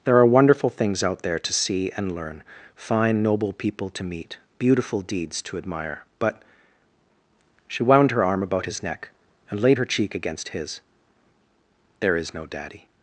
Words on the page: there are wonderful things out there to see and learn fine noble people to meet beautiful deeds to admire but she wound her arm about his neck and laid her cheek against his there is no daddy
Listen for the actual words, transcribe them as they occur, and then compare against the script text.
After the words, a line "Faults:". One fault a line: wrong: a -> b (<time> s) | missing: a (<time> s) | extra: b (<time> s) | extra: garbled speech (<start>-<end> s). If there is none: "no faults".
there are wonderful things out there to see and learn fine noble people to meet beautiful deeds to admire but she wound her arm about his neck and laid her cheek against his there is no daddy
Faults:
no faults